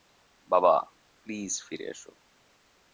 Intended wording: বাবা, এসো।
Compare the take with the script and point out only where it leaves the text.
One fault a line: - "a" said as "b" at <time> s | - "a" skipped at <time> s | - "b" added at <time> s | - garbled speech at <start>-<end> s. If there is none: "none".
- "প্লিজ ফিরে" added at 1.2 s